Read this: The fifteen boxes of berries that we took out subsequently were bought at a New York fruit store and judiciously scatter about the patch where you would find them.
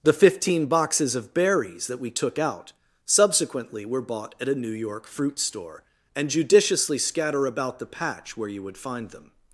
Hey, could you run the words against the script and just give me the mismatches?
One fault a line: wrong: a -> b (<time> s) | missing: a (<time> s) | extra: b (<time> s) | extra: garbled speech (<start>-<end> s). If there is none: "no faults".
no faults